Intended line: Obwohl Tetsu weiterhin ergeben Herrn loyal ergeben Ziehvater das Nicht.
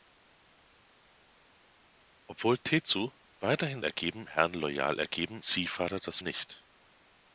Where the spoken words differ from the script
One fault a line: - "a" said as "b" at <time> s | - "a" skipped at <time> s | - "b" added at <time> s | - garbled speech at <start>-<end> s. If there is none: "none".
none